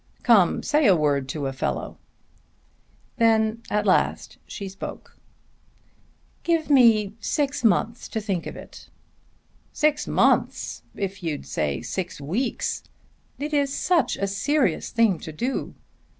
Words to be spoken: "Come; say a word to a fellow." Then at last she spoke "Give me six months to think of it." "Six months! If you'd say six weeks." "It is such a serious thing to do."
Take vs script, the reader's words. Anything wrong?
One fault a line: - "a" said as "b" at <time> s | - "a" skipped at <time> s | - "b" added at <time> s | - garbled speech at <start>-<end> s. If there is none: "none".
none